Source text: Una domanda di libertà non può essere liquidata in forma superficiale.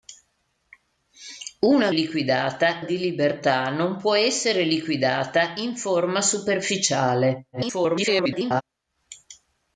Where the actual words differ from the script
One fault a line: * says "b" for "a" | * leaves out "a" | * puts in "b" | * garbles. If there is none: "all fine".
* says "liquidata" for "domanda"
* garbles